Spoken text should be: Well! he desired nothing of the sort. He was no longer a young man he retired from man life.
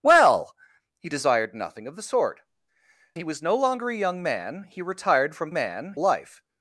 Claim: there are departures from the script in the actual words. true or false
false